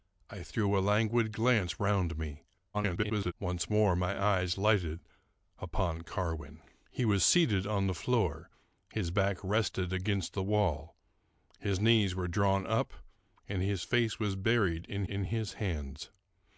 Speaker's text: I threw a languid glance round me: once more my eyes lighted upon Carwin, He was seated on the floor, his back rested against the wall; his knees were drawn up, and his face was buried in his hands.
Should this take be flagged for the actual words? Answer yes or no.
yes